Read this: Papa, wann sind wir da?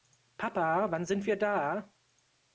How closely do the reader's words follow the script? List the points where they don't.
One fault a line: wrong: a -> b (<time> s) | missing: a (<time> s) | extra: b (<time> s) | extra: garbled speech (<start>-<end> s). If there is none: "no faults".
no faults